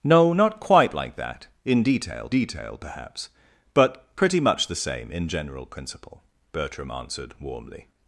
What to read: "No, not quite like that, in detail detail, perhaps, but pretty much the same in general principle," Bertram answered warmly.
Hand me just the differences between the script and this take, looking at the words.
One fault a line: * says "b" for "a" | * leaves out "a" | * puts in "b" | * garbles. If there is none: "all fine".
all fine